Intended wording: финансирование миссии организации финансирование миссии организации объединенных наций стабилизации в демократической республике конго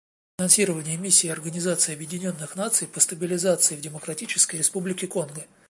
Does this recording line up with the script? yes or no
no